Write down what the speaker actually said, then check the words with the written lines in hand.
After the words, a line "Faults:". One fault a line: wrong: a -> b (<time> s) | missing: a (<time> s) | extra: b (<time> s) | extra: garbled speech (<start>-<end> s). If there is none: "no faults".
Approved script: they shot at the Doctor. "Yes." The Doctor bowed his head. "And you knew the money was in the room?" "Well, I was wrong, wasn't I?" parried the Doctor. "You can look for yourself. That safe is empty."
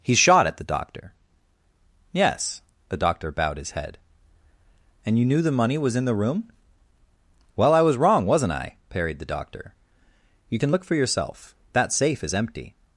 he shot at the Doctor. "Yes." The Doctor bowed his head. "And you knew the money was in the room?" "Well, I was wrong, wasn't I?" parried the Doctor. "You can look for yourself. That safe is empty."
Faults:
wrong: they -> he (0.0 s)